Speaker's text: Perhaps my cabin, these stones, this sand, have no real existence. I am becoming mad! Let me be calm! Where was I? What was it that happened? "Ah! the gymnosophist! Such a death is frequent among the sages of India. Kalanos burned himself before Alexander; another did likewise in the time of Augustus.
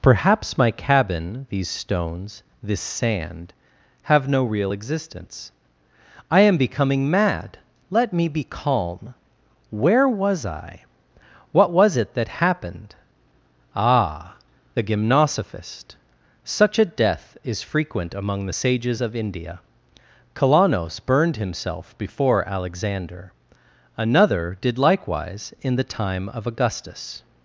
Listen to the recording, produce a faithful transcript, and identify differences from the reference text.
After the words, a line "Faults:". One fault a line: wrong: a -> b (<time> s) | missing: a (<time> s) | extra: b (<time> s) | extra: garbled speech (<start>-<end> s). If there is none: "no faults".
Perhaps my cabin, these stones, this sand, have no real existence. I am becoming mad! Let me be calm! Where was I? What was it that happened? "Ah! the gymnosophist! Such a death is frequent among the sages of India. Kalanos burned himself before Alexander; another did likewise in the time of Augustus.
Faults:
no faults